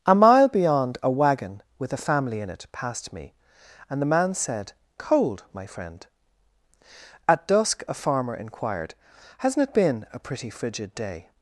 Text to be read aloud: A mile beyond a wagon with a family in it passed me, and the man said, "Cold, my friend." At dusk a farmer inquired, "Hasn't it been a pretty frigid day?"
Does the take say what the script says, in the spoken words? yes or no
yes